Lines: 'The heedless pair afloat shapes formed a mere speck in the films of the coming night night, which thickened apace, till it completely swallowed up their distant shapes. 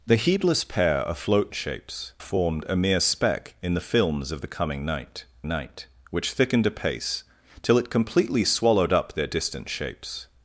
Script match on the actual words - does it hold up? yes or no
yes